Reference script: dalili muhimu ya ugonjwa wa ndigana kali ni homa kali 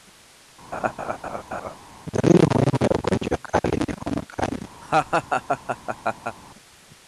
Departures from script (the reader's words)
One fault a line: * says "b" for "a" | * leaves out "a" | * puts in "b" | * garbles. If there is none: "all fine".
* leaves out "wa ndigana"